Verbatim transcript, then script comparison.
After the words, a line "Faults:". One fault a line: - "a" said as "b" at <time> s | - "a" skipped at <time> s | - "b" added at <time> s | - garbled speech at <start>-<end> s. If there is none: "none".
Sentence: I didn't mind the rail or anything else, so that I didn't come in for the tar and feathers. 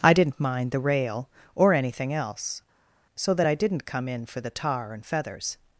I didn't mind the rail or anything else, so that I didn't come in for the tar and feathers.
Faults:
none